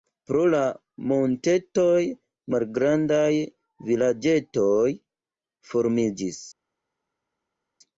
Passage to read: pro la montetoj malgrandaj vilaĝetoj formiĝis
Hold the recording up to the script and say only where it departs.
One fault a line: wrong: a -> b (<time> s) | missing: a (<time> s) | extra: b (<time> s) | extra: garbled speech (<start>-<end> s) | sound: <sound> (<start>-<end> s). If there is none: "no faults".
no faults